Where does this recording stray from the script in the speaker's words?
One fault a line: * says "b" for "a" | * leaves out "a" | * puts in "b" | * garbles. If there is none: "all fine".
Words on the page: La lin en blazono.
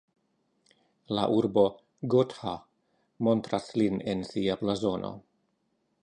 * puts in "urbo Gotha montras"
* puts in "sia"